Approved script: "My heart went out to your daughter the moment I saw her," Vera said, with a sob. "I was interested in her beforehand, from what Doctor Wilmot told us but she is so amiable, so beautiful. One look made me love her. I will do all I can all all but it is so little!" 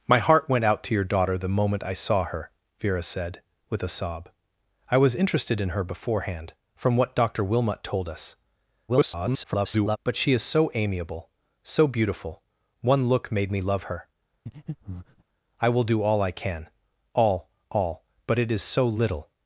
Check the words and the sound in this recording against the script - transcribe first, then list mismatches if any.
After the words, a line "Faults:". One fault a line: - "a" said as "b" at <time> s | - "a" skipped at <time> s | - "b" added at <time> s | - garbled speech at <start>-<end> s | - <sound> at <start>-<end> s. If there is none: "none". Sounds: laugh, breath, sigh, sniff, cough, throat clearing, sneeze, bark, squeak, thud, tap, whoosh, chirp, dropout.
"My heart went out to your daughter the moment I saw her," Vera said, with a sob. "I was interested in her beforehand, from what Doctor Wilmot told us [garbled] but she is so amiable, so beautiful. One look made me love her. I will do all I can all all but it is so little!"
Faults:
- garbled speech at 8.9-10.0 s
- breath at 14.5-15.2 s